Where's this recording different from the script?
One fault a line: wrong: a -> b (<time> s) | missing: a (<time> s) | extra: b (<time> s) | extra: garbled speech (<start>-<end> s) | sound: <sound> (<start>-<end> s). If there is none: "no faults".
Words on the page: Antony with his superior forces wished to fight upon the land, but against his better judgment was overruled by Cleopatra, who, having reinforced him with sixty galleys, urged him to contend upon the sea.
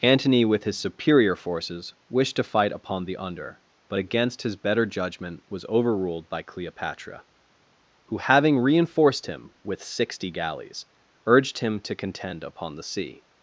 wrong: land -> under (3.2 s)